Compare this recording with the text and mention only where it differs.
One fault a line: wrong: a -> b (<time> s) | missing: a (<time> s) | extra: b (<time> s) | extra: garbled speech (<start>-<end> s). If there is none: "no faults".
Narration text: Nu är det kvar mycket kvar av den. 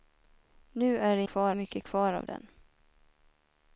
no faults